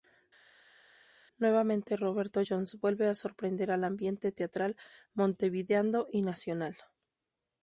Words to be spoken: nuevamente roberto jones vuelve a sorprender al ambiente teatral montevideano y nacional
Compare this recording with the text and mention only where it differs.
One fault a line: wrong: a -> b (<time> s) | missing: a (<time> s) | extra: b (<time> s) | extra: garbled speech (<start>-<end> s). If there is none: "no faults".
no faults